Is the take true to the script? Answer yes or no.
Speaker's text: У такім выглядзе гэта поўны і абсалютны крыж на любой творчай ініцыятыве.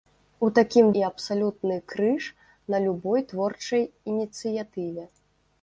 no